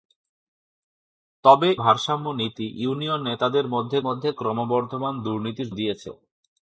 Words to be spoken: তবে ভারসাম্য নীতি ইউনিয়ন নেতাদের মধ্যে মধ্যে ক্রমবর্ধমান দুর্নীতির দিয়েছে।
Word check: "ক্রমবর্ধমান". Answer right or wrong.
right